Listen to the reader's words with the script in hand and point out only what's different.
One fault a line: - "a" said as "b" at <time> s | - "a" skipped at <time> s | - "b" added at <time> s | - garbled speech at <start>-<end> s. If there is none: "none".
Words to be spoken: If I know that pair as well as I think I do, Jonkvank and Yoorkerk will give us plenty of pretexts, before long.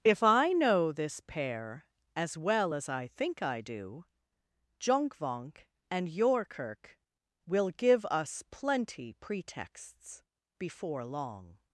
- "that" said as "this" at 0.9 s
- "of" skipped at 9.1 s